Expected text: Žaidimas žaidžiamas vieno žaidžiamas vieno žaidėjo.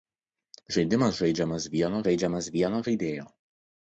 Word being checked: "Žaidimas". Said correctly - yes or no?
yes